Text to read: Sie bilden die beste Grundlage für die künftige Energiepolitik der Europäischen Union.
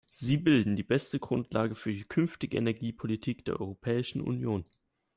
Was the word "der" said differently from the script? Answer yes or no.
no